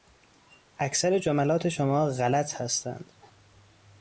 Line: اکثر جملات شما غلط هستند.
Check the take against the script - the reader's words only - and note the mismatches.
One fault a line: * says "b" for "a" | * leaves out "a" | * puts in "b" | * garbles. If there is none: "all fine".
all fine